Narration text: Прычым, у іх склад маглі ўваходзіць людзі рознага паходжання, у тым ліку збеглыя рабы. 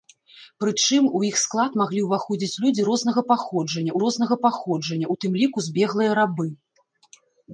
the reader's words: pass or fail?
fail